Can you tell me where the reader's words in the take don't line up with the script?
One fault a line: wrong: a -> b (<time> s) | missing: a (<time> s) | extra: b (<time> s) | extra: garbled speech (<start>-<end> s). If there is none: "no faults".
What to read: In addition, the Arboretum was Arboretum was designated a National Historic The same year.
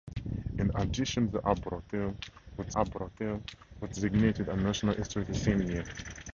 no faults